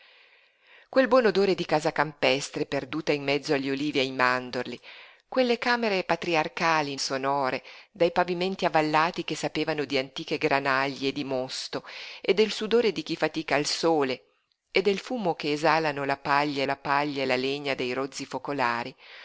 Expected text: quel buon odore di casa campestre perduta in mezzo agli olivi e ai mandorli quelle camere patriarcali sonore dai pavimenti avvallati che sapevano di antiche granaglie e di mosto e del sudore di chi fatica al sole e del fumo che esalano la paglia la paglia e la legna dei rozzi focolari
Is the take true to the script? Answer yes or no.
yes